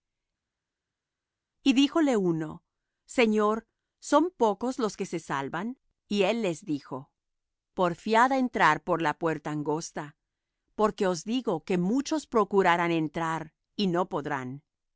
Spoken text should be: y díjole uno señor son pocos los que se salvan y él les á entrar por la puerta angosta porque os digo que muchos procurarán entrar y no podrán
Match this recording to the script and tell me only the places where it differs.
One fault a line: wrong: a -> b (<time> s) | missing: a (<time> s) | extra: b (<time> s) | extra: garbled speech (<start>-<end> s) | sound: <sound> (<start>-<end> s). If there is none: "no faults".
extra: dijo porfiad (6.6 s)